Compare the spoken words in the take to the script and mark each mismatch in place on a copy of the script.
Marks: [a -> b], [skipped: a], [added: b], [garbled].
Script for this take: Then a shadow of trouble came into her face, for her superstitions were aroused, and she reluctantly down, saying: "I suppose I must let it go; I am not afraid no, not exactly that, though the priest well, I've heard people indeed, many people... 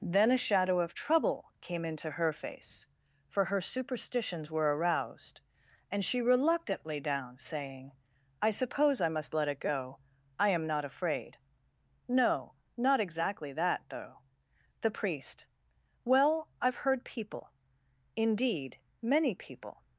Then a shadow of trouble came into her face, for her superstitions were aroused, and she reluctantly down, saying: "I suppose I must let it go; I am not afraid no, not exactly that, though the priest well, I've heard people indeed, many people...